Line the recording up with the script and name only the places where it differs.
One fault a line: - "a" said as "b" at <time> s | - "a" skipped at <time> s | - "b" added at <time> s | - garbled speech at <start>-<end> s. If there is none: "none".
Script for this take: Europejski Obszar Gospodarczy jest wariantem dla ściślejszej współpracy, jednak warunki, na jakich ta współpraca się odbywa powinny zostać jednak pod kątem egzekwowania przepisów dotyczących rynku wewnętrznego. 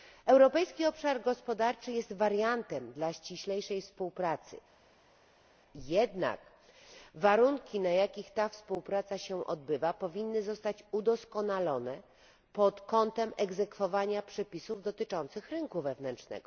- "jednak" said as "udoskonalone" at 10.9 s